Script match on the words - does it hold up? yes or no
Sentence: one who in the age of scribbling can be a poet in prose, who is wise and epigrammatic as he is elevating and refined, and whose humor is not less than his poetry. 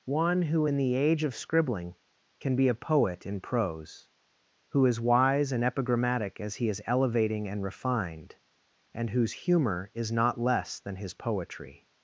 yes